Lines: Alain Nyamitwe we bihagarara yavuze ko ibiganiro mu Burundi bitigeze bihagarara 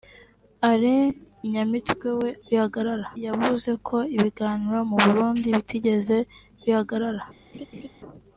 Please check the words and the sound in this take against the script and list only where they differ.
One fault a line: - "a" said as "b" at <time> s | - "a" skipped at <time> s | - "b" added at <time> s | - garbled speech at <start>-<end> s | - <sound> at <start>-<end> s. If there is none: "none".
- laugh at 7.5-7.9 s